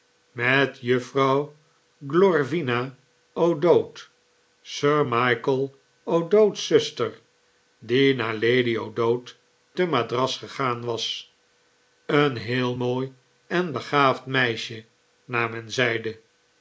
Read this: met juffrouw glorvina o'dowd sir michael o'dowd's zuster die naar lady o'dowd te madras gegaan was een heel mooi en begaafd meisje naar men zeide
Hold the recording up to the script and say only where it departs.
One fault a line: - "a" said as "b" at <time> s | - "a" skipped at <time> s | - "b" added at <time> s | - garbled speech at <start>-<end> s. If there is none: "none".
none